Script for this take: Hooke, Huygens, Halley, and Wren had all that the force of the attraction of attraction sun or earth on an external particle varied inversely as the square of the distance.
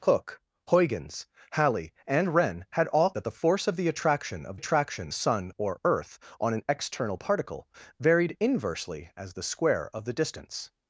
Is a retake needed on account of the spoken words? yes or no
no